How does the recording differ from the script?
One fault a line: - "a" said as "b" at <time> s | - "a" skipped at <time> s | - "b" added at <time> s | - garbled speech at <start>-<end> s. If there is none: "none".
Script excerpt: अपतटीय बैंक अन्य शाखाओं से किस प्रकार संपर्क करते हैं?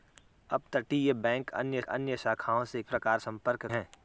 - "अन्य" added at 1.8 s
- "किस" skipped at 2.8 s
- "करते" skipped at 3.7 s